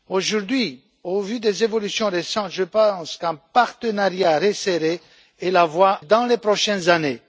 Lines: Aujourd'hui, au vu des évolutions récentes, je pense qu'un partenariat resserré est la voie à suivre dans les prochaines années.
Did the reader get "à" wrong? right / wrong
wrong